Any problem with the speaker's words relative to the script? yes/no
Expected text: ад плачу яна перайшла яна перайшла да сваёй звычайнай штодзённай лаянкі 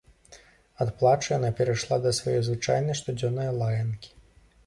yes